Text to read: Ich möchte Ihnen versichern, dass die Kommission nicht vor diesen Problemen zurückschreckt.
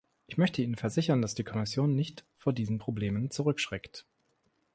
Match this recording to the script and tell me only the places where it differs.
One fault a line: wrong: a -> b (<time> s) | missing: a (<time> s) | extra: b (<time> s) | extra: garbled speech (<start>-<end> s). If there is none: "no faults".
no faults